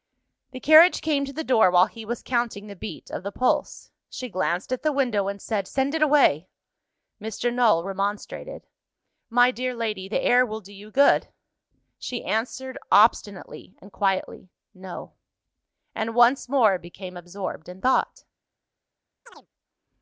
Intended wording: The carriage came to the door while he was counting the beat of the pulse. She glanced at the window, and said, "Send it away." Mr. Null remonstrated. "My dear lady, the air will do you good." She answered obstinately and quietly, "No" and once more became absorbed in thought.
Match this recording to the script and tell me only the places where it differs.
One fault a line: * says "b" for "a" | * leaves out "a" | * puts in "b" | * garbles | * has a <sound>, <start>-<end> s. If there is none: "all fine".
* has a chirp, 19.3-19.5 s